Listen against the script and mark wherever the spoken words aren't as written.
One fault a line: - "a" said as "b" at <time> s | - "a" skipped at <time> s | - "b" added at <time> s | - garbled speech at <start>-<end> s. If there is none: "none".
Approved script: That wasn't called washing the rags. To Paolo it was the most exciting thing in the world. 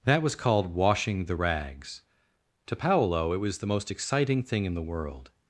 - "wasn't" said as "was" at 0.2 s